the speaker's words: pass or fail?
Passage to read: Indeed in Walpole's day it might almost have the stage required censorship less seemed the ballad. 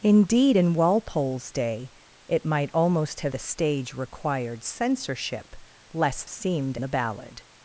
pass